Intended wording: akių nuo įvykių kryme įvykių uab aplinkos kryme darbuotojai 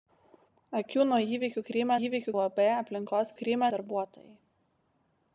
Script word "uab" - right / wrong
right